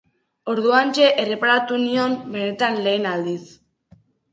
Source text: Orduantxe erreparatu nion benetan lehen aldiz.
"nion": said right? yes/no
yes